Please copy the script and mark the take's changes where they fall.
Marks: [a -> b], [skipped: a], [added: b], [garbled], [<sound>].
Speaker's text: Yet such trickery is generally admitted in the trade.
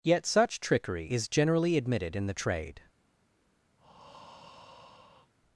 Yet such trickery is generally admitted in the trade. [breath]